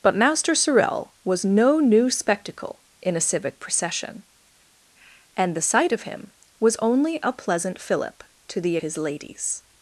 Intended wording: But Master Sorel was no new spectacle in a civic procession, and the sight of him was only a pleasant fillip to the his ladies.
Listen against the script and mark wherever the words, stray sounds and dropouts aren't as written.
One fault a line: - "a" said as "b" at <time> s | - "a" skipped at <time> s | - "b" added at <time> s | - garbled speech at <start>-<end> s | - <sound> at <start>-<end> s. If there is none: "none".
none